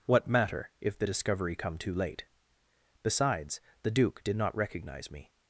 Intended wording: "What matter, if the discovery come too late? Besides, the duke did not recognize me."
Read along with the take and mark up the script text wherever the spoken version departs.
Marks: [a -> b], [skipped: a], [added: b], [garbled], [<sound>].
"What matter, if the discovery come too late? Besides, the duke did not recognize me."